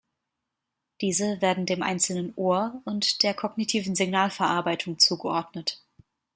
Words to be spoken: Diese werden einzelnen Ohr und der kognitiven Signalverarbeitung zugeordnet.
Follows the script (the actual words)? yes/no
no